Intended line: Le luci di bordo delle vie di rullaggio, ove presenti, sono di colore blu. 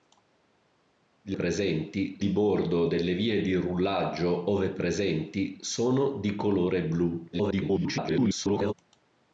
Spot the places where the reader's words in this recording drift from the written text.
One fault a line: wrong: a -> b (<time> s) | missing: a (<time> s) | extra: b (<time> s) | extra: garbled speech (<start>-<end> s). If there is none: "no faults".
wrong: luci -> presenti (1.3 s)
extra: garbled speech (7.3-8.7 s)